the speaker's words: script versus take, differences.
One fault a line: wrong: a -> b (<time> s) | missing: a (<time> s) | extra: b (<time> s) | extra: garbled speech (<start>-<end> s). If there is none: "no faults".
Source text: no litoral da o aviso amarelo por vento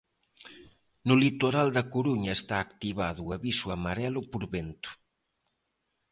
extra: coruña está activado (1.9 s)